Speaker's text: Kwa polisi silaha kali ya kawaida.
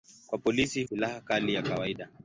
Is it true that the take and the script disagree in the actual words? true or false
false